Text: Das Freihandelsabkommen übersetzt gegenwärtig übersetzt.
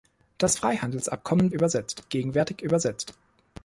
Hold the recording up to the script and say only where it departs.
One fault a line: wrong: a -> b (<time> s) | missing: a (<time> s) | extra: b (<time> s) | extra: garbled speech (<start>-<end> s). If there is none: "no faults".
no faults